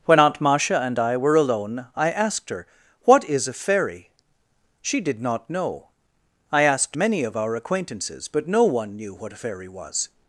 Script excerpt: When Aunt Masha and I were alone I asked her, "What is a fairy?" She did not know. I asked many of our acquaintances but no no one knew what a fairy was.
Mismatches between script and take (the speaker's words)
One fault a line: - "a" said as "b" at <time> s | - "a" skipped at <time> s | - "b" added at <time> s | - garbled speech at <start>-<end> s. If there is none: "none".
- "no" skipped at 8.6 s